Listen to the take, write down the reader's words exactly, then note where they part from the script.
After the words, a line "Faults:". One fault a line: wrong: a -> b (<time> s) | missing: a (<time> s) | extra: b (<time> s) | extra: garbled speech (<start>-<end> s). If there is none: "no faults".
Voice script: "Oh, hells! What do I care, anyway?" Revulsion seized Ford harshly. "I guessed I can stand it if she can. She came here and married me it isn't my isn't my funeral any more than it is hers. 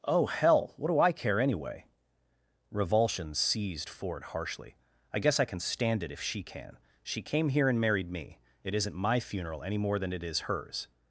"Oh, hell! What do I care, anyway?" Revulsion seized Ford harshly. "I guess I can stand it if she can. She came here and married me it isn't my funeral any more than it is hers.
Faults:
wrong: hells -> hell (0.2 s)
wrong: guessed -> guess (5.2 s)
missing: isn't my (9.2 s)